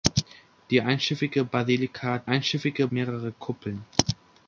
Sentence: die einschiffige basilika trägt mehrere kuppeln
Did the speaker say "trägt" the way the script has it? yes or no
no